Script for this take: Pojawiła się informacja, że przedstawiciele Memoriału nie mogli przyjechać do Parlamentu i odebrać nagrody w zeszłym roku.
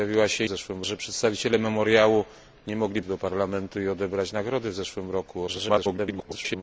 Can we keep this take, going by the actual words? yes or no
no